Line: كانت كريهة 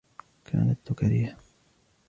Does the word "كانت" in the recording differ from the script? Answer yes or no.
no